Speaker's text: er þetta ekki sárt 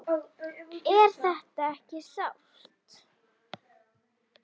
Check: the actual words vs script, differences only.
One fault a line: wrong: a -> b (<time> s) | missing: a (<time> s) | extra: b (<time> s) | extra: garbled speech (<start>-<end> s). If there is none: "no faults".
no faults